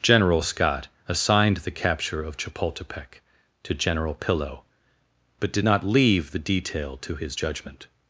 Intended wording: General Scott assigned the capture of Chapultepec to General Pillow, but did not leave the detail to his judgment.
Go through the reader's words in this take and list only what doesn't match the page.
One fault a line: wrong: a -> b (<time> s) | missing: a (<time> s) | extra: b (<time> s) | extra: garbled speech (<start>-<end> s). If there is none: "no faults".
no faults